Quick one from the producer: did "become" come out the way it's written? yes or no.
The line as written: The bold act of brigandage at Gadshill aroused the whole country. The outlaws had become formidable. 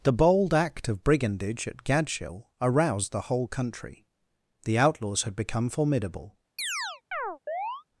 yes